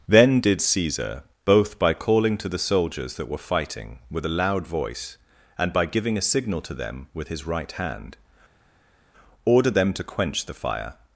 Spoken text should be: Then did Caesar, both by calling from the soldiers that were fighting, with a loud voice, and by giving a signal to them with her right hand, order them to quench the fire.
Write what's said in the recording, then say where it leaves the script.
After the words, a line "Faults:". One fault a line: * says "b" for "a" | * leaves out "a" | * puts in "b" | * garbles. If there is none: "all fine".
Then did Caesar, both by calling to the soldiers that were fighting, with a loud voice, and by giving a signal to them with his right hand, order them to quench the fire.
Faults:
* says "to" for "from"
* says "his" for "her"